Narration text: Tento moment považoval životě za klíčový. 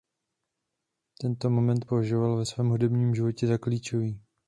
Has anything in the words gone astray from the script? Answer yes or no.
yes